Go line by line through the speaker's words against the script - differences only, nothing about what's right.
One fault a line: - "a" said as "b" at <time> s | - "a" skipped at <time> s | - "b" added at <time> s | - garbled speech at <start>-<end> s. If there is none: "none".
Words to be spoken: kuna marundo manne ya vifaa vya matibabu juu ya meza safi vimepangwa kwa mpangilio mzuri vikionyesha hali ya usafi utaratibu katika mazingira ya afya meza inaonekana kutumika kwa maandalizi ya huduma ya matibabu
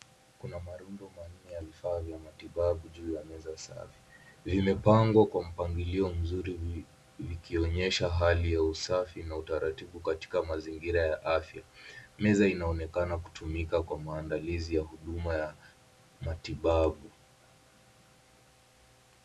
- "na" added at 9.2 s